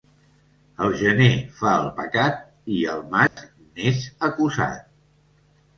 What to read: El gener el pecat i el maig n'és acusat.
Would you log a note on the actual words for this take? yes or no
yes